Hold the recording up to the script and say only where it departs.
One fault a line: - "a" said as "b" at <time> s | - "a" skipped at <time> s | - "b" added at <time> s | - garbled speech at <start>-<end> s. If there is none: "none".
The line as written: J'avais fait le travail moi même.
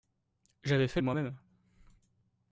- "le travail" skipped at 1.0 s